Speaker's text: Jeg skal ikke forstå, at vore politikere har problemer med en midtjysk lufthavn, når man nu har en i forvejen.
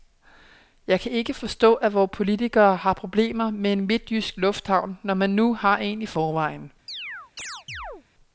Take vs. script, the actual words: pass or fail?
fail